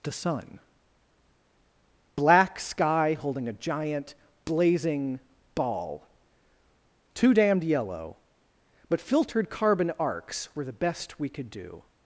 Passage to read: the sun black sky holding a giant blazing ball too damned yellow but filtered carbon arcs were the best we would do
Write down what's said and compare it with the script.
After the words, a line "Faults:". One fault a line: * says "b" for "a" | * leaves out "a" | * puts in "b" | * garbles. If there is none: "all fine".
the sun black sky holding a giant blazing ball too damned yellow but filtered carbon arcs were the best we could do
Faults:
* says "could" for "would"